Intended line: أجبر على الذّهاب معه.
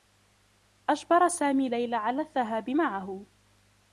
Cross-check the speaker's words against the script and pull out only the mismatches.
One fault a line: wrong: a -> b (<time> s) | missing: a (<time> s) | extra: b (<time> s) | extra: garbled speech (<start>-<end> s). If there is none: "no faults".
extra: سامي ليلى (1.3 s)